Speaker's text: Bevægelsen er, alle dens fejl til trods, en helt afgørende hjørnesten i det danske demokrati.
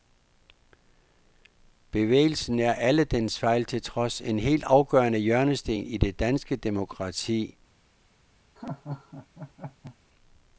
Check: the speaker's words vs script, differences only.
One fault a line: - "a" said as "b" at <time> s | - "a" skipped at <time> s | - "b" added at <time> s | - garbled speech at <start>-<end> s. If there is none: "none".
none